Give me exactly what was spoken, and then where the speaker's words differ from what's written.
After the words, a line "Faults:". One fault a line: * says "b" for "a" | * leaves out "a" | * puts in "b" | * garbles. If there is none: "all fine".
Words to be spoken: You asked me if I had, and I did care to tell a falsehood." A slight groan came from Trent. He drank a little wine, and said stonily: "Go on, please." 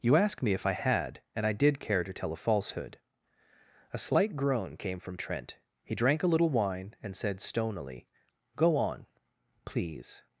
You asked me if I had, and I did care to tell a falsehood." A slight groan came from Trent. He drank a little wine, and said stonily: "Go on, please."
Faults:
all fine